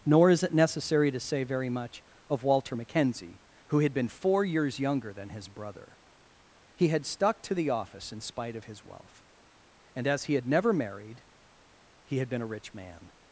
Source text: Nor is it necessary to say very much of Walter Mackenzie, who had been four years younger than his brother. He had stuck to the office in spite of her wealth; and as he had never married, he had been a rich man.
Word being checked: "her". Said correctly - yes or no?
no